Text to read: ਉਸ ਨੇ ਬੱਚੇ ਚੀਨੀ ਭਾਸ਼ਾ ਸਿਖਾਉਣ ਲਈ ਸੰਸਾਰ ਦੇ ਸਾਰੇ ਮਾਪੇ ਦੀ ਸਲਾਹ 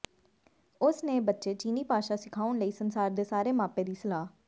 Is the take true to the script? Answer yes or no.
yes